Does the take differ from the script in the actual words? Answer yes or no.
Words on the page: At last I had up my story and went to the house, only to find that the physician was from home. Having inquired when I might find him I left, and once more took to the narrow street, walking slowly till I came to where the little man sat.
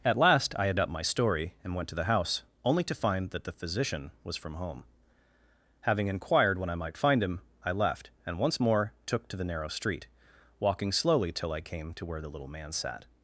no